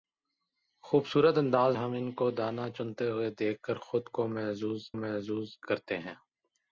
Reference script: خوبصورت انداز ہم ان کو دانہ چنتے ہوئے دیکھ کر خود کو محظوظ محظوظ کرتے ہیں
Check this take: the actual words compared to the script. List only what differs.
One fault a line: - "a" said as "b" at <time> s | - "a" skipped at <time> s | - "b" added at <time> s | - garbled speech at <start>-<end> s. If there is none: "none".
none